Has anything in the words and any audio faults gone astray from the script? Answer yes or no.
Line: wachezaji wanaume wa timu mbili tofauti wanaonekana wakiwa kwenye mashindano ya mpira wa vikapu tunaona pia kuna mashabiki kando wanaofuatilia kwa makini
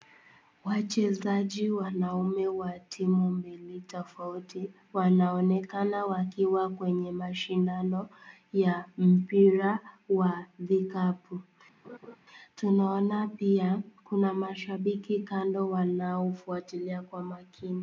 yes